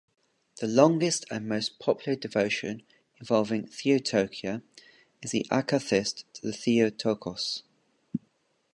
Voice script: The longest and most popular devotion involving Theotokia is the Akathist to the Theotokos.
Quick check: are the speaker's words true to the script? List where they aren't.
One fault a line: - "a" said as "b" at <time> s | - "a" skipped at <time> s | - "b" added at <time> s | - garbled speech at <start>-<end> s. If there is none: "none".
none